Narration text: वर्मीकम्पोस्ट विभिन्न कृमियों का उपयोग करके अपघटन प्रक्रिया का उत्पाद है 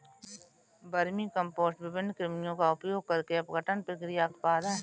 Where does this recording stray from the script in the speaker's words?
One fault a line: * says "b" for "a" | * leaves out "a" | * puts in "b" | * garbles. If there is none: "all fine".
* leaves out "का"